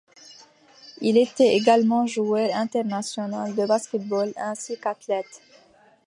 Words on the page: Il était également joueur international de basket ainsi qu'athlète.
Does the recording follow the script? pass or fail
fail